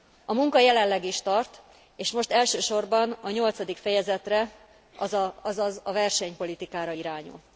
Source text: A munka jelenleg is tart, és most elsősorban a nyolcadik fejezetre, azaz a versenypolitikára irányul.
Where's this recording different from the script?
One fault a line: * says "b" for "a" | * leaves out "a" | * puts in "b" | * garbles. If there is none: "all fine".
all fine